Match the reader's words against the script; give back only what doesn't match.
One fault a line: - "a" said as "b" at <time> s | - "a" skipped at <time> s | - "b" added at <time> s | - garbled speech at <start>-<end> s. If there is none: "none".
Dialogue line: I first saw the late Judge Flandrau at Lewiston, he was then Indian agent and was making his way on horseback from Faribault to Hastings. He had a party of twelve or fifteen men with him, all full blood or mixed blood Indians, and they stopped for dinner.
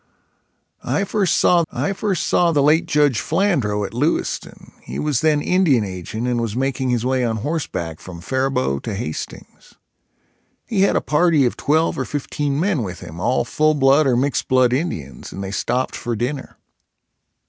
- "I first saw" added at 1.7 s